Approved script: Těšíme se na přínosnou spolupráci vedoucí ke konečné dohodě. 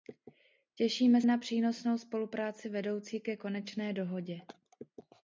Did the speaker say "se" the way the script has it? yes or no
no